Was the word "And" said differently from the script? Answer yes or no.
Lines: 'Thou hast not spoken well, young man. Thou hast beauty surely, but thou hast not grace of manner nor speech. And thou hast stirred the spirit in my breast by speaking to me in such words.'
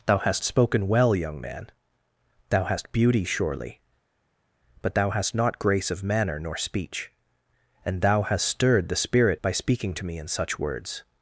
no